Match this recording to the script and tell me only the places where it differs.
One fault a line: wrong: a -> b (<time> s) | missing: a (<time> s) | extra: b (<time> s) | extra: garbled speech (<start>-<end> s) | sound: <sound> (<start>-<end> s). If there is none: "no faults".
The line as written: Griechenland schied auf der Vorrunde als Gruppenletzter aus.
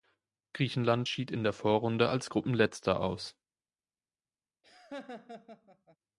wrong: auf -> in (1.3 s)
sound: laugh (4.6-6.0 s)